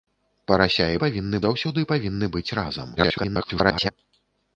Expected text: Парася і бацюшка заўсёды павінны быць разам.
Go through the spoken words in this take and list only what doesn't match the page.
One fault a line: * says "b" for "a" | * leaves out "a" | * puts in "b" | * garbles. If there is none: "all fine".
* says "павінны" for "бацюшка"
* garbles